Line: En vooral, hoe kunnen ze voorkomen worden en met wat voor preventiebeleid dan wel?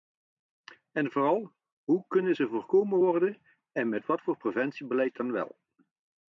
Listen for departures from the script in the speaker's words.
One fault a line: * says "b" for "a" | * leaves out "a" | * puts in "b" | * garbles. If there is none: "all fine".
all fine